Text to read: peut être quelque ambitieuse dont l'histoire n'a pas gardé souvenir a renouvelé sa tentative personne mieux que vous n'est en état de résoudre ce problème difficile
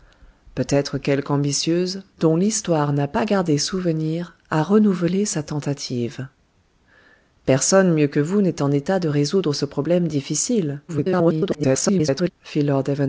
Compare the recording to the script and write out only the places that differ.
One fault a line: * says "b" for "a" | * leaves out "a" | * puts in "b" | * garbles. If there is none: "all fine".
* garbles